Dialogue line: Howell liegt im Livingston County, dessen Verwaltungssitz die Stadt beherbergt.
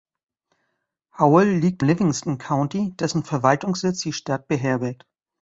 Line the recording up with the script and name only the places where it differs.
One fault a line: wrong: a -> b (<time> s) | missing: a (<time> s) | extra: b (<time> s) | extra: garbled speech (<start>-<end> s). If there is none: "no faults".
missing: im (1.8 s)